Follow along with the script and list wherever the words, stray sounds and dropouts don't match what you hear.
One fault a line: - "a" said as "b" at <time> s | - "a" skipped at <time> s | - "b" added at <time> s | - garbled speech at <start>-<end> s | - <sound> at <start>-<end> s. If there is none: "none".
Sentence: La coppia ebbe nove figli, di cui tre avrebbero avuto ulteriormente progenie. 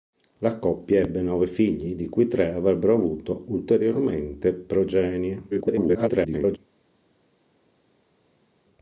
- garbled speech at 5.5-6.6 s